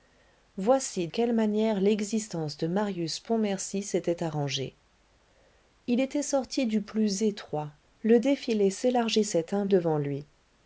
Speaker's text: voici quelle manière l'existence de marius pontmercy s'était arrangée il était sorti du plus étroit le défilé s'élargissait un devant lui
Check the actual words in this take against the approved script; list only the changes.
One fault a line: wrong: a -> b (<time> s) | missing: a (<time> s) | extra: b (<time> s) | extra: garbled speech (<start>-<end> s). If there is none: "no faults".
no faults